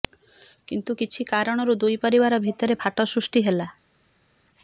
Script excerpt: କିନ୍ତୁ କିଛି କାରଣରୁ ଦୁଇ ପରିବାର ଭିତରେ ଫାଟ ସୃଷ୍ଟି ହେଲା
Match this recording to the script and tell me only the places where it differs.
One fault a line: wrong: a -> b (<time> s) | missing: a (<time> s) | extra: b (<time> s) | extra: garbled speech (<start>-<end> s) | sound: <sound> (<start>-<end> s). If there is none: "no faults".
no faults